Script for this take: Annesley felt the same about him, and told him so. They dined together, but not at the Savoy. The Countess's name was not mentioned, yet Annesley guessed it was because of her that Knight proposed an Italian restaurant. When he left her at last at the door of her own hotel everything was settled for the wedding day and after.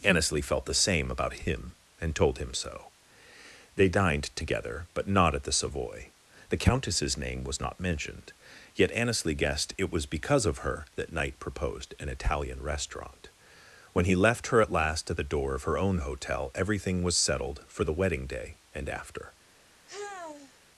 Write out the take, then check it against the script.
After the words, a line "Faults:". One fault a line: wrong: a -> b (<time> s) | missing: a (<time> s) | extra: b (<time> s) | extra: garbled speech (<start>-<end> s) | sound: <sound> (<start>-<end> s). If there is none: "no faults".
Annesley felt the same about him, and told him so. They dined together, but not at the Savoy. The Countess's name was not mentioned, yet Annesley guessed it was because of her that Knight proposed an Italian restaurant. When he left her at last at the door of her own hotel everything was settled for the wedding day and after.
Faults:
sound: sigh (19.9-20.6 s)